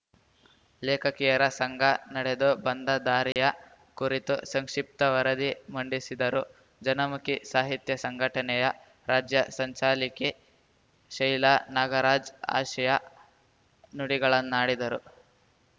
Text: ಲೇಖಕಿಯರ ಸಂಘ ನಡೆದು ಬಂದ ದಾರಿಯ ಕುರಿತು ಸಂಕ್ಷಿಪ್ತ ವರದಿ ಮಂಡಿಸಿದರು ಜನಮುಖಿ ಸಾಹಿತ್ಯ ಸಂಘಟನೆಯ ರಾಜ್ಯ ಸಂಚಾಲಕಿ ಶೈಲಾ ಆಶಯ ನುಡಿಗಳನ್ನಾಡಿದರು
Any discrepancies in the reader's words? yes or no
yes